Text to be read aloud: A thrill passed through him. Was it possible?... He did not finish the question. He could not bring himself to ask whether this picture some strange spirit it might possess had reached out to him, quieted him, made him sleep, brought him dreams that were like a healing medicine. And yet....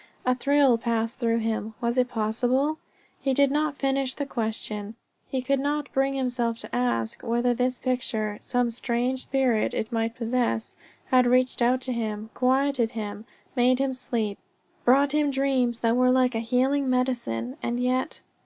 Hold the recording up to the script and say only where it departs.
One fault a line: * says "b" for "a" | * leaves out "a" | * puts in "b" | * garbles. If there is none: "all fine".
all fine